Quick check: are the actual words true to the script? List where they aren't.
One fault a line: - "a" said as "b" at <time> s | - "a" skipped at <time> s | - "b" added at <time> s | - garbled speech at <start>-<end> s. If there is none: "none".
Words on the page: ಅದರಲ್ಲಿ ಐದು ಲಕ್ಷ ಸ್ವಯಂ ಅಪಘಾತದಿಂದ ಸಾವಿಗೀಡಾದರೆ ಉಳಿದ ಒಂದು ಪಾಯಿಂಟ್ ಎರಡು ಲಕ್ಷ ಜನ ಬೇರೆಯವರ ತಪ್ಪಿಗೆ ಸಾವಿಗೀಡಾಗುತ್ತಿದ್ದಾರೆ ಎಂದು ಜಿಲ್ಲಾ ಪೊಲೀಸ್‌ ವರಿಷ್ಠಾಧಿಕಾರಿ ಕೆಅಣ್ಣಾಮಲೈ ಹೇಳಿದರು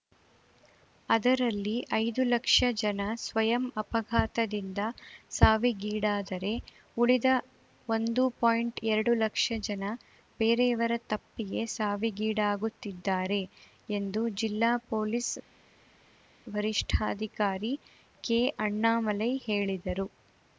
- "ಜನ" added at 2.8 s